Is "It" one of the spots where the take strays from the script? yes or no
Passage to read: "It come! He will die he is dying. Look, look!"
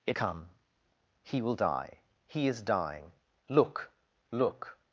no